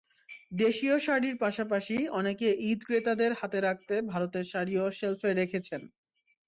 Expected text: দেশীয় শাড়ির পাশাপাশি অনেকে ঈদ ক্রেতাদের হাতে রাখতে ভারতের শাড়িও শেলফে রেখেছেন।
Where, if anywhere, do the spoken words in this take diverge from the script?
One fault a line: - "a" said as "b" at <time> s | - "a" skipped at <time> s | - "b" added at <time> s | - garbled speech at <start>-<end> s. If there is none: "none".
none